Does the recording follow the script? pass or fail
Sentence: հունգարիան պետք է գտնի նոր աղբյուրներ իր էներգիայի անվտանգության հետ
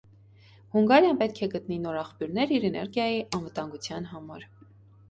fail